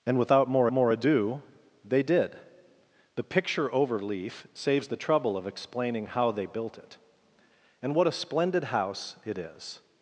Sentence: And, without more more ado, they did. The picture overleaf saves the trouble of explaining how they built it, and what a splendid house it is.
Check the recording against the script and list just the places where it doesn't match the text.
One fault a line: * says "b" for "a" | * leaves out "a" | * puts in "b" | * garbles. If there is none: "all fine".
all fine